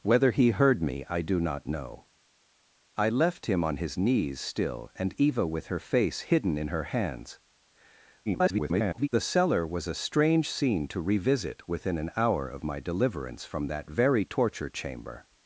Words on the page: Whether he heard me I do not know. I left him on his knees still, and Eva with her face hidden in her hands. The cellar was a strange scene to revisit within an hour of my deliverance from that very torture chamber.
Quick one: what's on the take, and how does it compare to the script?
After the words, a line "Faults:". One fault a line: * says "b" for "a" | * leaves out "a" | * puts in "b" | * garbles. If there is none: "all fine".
Whether he heard me I do not know. I left him on his knees still, and Eva with her face hidden in her hands. [garbled] The cellar was a strange scene to revisit within an hour of my deliverance from that very torture chamber.
Faults:
* garbles